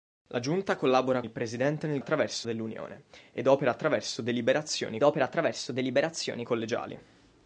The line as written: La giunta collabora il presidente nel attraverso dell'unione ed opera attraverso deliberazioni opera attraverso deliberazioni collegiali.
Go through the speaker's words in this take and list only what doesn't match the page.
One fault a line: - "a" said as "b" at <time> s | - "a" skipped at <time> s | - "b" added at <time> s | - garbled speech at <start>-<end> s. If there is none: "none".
none